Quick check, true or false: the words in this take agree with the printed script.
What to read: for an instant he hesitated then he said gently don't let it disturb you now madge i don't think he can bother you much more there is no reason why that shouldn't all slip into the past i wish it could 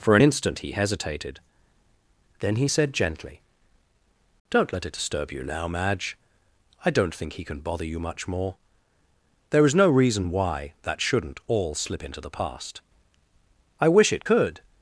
true